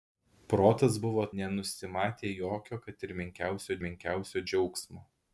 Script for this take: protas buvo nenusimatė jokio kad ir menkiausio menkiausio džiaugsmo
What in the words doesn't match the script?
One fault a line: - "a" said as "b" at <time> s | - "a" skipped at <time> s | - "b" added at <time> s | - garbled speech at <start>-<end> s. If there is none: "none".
none